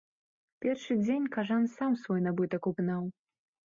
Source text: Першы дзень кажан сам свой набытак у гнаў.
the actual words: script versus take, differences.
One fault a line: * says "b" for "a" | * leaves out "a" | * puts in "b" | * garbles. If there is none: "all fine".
all fine